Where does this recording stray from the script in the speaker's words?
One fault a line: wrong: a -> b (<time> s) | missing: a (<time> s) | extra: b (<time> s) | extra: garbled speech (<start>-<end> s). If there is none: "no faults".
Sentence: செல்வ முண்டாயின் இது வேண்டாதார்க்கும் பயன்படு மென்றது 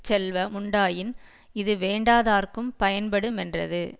no faults